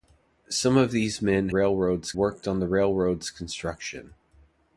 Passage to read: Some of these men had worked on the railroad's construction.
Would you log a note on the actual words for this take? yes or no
yes